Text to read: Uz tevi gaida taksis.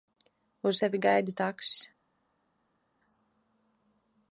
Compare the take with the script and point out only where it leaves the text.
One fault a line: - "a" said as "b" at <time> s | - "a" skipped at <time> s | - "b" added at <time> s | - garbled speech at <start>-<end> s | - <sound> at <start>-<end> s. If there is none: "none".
none